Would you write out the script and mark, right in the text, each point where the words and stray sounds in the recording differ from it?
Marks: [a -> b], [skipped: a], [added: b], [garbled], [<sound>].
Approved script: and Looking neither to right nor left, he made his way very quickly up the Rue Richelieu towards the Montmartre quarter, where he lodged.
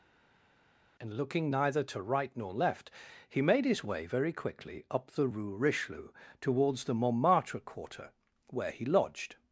and Looking neither to right nor left, he made his way very quickly up the Rue Richelieu towards the Montmartre quarter, where he lodged.